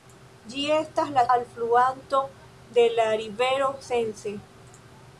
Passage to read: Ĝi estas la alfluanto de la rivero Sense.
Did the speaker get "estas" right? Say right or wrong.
right